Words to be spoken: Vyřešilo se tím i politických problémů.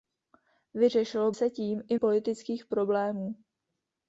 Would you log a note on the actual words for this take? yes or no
no